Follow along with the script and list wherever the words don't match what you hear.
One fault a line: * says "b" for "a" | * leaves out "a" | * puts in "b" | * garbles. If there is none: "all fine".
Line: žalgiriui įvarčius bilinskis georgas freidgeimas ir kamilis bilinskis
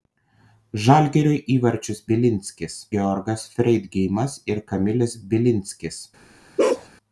all fine